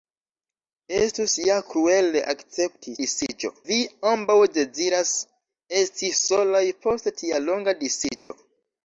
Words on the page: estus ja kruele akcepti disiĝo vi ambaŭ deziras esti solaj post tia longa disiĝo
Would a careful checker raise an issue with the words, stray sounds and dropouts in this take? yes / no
yes